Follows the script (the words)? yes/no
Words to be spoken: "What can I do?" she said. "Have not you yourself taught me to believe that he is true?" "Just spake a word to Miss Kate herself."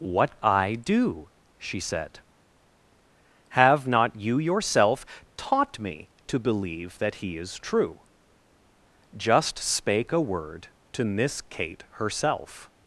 no